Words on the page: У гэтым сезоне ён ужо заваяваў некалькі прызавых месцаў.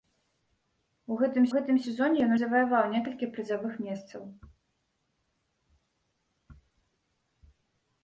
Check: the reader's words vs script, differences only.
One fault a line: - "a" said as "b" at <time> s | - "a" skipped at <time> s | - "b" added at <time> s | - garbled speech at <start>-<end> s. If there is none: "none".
- "гэтым" added at 1.5 s
- "ужо" skipped at 2.3 s